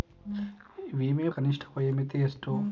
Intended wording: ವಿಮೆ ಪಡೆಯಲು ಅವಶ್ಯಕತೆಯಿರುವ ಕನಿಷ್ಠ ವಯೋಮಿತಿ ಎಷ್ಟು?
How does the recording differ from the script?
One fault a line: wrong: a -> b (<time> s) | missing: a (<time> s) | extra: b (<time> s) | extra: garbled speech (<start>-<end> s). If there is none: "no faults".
missing: ಪಡೆಯಲು ಅವಶ್ಯಕತೆಯಿರುವ (1.3 s)